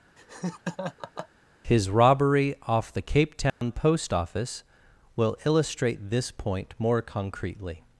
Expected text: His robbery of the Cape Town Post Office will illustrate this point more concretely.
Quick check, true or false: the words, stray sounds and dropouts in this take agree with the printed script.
false